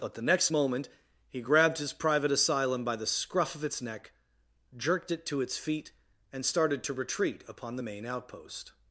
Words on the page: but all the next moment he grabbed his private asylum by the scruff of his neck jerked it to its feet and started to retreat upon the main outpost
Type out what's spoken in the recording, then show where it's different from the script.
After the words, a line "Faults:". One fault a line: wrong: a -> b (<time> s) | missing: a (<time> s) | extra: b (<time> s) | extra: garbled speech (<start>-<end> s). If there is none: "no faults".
but the next moment he grabbed his private asylum by the scruff of its neck jerked it to its feet and started to retreat upon the main outpost
Faults:
missing: all (0.1 s)
wrong: his -> its (3.6 s)